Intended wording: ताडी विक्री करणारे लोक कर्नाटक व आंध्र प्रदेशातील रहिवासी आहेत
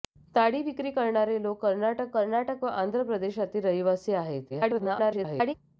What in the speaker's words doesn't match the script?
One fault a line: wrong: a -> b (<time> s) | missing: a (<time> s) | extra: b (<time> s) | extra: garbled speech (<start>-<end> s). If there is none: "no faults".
extra: कर्नाटक (2.1 s)
extra: garbled speech (4.5-5.5 s)